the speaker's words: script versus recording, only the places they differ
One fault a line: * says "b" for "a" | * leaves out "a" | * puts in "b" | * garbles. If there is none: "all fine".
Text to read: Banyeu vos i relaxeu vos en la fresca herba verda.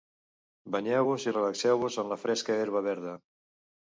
all fine